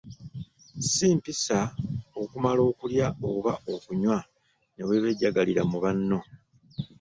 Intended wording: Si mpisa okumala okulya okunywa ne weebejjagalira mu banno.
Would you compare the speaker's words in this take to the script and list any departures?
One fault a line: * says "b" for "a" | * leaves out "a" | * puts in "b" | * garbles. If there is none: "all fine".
* puts in "oba"